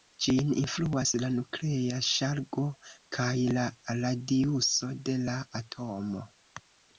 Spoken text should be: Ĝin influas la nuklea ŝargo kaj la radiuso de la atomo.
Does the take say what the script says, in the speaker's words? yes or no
yes